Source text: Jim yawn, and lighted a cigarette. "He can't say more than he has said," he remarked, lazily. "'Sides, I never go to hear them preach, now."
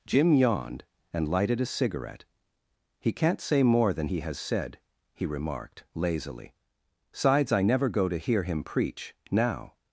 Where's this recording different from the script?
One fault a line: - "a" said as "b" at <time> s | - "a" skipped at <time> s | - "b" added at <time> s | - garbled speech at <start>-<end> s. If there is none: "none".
- "yawn" said as "yawned" at 0.3 s
- "them" said as "him" at 8.4 s